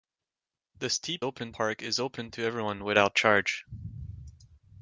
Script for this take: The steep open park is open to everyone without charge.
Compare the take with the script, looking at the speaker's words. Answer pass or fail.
pass